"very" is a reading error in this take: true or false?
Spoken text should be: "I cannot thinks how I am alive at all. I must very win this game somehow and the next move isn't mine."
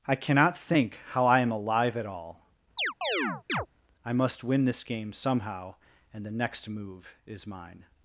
true